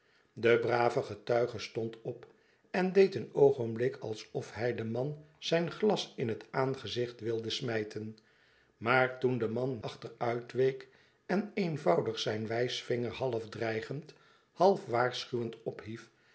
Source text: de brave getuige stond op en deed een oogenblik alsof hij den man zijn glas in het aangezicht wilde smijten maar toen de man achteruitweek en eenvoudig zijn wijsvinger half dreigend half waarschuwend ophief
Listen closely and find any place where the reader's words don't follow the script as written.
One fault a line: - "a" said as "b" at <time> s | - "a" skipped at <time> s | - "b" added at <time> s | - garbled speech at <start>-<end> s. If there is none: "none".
none